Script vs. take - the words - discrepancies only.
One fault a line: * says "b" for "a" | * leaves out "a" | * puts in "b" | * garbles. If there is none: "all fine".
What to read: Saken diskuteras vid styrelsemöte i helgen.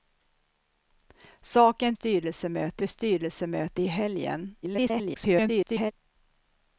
* says "styrelsemöte" for "diskuteras"
* garbles